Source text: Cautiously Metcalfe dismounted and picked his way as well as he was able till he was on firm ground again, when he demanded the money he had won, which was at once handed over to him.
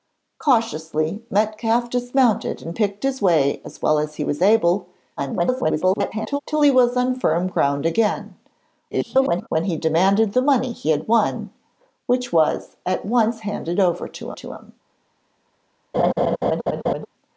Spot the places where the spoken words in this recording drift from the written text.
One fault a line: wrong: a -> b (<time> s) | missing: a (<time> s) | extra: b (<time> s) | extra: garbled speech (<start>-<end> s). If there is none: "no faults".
extra: garbled speech (5.2-6.4 s)
extra: garbled speech (8.9-9.5 s)
extra: to (14.3 s)